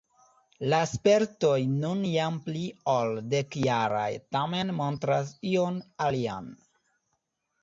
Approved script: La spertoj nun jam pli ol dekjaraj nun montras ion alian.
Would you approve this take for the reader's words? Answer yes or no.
no